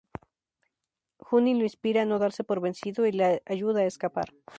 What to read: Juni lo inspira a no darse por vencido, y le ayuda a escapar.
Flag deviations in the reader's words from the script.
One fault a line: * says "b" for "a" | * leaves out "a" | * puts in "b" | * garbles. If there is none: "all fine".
all fine